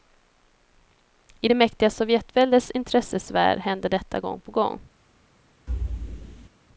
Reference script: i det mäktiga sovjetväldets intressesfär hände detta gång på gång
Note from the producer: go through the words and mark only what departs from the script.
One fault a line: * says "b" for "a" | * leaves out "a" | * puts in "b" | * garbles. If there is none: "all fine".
all fine